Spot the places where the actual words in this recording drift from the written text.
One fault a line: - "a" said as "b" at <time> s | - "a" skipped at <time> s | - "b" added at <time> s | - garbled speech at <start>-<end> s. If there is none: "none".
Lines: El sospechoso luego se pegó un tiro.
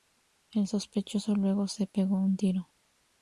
none